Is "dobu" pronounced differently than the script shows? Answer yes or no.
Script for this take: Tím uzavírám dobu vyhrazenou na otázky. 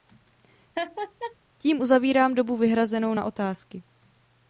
no